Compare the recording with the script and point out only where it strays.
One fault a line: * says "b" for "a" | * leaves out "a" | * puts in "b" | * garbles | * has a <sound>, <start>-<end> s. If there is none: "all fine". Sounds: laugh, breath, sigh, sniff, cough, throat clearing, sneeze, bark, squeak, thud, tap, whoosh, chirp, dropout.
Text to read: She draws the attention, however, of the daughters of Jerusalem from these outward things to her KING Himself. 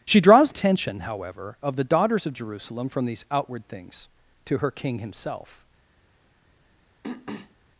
* leaves out "the"
* has a throat clearing, 7.0-7.6 s